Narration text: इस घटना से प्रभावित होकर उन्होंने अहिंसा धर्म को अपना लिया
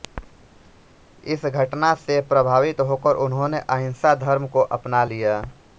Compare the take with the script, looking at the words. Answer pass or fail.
pass